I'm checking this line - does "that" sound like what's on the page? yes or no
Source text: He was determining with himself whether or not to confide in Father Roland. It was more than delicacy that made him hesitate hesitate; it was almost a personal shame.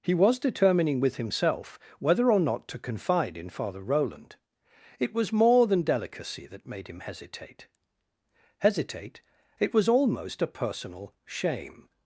yes